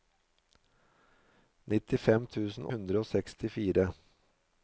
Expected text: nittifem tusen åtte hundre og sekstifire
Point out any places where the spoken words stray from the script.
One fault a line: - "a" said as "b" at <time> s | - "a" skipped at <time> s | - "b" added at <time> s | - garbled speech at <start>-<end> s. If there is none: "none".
- "åtte" skipped at 2.7 s